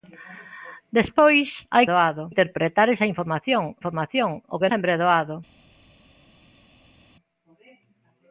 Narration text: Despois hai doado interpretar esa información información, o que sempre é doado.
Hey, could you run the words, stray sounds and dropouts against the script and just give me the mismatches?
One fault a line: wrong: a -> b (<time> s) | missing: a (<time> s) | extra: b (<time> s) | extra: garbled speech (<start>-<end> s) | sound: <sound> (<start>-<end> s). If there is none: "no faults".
no faults